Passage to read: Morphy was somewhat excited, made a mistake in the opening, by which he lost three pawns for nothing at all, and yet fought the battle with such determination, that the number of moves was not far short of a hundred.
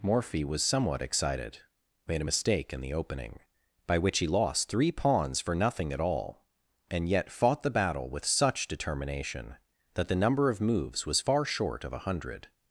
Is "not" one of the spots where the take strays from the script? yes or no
yes